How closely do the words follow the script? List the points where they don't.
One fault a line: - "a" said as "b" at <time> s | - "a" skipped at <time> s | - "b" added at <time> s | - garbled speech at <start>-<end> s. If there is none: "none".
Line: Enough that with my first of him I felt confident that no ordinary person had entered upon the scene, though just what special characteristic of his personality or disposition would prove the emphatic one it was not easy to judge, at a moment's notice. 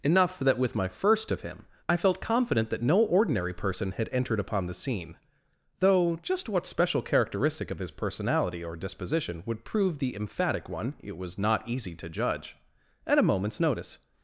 none